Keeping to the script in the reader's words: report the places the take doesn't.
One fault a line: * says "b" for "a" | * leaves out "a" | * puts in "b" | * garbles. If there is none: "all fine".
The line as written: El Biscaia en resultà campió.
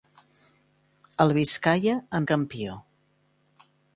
* leaves out "resultà"